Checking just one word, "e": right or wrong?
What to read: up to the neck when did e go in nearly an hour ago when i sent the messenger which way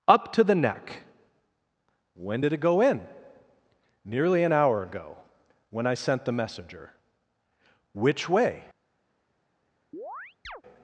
wrong